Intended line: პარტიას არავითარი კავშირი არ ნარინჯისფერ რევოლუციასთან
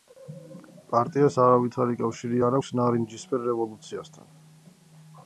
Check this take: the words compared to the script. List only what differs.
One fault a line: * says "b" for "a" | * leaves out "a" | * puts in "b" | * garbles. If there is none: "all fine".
* puts in "აქვს"